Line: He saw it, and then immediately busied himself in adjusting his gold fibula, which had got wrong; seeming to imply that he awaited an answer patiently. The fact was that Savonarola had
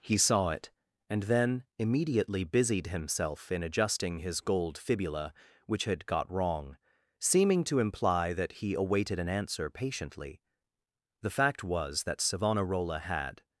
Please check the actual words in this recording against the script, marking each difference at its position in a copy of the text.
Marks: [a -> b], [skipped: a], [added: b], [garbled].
He saw it, and then immediately busied himself in adjusting his gold fibula, which had got wrong; seeming to imply that he awaited an answer patiently. The fact was that Savonarola had